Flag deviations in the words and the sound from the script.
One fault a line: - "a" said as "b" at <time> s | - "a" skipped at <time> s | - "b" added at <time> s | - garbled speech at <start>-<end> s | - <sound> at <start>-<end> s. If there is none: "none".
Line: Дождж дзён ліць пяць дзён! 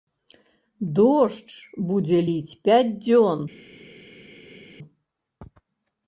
- "дзён" said as "будзе" at 1.9 s